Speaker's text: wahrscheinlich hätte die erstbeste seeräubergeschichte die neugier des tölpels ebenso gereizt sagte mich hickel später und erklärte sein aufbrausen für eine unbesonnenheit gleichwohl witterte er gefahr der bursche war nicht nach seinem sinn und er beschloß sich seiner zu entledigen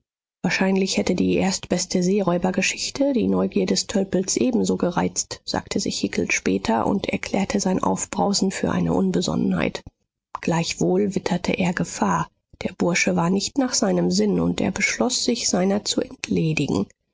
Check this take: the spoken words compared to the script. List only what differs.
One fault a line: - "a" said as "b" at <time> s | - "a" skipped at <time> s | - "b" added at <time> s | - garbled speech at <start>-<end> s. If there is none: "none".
- "mich" said as "sich" at 5.8 s